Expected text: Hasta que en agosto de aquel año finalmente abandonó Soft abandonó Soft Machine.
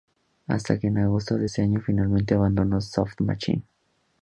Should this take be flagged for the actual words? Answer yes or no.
yes